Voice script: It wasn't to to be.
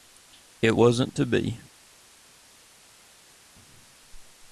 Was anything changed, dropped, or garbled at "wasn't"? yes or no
no